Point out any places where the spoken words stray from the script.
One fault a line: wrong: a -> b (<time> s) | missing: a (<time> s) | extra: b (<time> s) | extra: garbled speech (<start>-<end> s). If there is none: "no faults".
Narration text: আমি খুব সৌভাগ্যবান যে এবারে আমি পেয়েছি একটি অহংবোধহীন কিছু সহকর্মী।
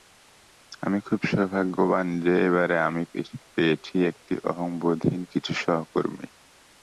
no faults